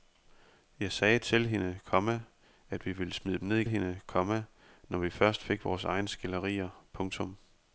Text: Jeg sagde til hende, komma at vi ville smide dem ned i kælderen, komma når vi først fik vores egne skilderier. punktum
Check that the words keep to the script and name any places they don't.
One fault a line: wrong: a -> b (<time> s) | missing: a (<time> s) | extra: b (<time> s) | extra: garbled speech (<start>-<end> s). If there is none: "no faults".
wrong: kælderen -> hende (3.7 s)